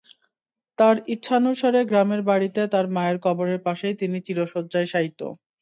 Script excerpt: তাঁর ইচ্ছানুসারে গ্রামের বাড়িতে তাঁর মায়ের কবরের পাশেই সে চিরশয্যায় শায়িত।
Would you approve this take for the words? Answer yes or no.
no